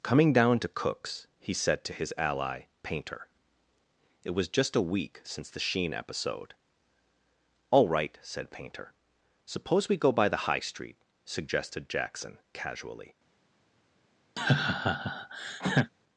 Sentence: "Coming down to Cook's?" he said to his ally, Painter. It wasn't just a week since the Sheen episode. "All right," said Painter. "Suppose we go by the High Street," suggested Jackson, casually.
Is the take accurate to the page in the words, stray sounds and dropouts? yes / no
no